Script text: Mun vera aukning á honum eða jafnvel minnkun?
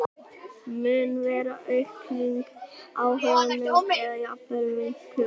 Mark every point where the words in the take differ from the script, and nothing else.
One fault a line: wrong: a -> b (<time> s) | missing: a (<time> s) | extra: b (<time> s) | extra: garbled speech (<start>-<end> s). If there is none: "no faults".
no faults